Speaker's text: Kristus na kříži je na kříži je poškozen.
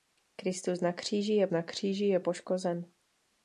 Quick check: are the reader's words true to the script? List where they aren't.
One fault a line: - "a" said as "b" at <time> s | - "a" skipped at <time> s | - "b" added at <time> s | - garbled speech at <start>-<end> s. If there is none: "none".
none